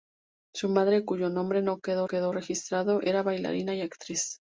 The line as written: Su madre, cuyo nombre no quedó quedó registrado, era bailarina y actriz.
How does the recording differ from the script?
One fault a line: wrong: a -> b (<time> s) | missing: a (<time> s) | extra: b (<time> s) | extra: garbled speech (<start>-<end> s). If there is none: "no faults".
no faults